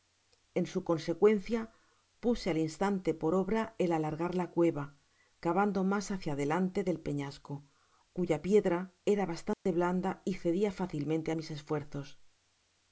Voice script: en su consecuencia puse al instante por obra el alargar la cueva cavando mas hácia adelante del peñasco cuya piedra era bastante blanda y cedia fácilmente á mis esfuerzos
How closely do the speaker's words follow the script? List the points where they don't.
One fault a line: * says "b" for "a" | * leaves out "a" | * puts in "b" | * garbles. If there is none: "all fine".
all fine